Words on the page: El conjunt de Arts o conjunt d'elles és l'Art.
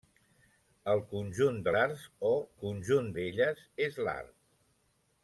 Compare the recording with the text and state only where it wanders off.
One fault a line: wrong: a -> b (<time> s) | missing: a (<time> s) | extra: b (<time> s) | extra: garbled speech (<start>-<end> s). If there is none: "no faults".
no faults